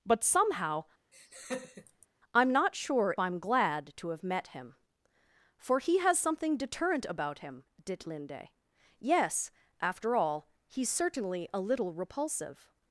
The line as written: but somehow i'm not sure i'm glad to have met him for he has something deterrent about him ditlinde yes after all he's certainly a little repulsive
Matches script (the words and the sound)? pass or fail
fail